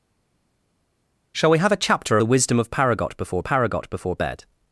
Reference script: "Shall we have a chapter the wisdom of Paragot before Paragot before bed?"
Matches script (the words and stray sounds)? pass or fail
pass